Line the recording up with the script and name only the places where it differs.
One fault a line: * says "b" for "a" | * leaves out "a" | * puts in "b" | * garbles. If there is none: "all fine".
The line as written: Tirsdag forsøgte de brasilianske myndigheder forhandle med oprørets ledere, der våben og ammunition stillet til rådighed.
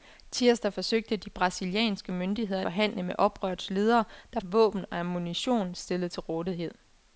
all fine